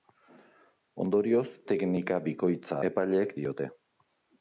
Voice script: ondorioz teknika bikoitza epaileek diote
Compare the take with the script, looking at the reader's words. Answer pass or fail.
pass